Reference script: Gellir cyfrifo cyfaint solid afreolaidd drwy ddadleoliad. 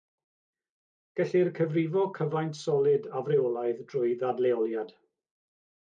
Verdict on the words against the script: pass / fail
pass